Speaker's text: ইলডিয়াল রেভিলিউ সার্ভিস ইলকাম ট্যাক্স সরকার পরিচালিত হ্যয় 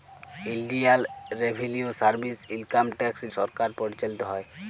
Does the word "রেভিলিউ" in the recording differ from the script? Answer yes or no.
no